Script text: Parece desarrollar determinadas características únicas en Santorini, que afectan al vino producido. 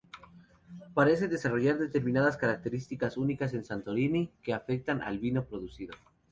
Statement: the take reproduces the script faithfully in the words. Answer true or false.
true